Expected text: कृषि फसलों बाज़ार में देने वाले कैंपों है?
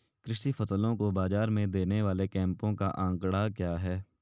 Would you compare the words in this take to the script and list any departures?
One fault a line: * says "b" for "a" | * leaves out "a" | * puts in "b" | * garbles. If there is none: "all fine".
* puts in "को"
* puts in "का आंकड़ा क्या"